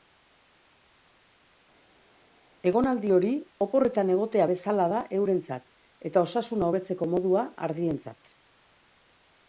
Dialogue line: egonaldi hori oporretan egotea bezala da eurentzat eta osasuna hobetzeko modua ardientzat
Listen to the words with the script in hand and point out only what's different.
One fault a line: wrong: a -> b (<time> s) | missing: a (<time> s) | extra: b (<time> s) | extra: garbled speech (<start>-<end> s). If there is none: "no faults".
no faults